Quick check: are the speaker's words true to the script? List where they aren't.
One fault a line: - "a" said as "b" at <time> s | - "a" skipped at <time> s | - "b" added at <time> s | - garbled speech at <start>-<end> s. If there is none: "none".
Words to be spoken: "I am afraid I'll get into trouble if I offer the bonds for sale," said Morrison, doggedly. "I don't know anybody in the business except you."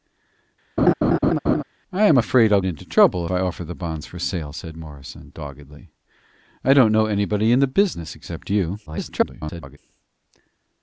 - "get" skipped at 2.6 s
- "if" skipped at 3.3 s
- garbled speech at 8.9-9.8 s